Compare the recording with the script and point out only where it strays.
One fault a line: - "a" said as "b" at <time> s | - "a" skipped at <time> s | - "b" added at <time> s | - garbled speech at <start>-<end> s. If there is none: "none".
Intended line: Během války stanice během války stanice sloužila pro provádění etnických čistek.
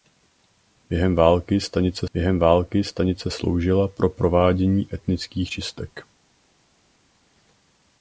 none